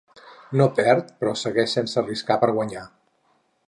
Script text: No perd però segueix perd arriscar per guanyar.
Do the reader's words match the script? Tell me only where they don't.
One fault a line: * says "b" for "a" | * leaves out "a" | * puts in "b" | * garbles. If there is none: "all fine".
* says "sense" for "perd"